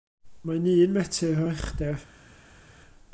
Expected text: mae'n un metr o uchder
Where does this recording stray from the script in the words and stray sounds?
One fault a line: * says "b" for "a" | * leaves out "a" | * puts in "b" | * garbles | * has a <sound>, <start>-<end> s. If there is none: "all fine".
all fine